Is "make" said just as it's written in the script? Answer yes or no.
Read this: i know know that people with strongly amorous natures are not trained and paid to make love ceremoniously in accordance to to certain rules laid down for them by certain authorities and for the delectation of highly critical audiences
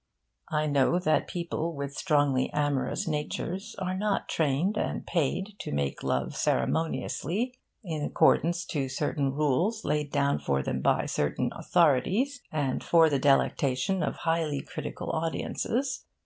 yes